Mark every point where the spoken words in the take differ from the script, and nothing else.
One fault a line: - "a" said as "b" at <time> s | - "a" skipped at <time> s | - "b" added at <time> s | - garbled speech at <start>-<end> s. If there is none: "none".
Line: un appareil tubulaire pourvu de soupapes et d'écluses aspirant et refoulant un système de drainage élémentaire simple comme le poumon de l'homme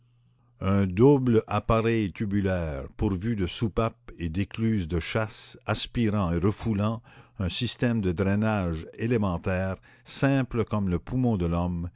- "double" added at 0.9 s
- "de chasse" added at 4.9 s